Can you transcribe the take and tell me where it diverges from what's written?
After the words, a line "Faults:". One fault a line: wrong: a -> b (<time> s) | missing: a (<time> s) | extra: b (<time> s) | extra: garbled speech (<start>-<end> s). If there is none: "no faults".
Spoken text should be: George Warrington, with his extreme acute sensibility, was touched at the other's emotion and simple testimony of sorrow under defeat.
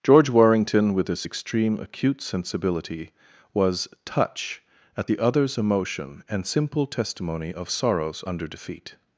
George Warrington, with his extreme acute sensibility, was touch at the other's emotion and simple testimony of sorrows under defeat.
Faults:
wrong: touched -> touch (4.0 s)
wrong: sorrow -> sorrows (7.7 s)